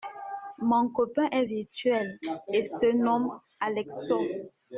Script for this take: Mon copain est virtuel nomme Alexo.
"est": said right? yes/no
yes